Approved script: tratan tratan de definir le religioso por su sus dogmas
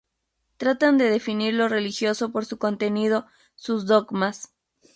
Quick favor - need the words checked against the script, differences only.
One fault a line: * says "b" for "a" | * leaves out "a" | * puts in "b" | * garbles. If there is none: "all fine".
* leaves out "tratan"
* says "lo" for "le"
* puts in "contenido"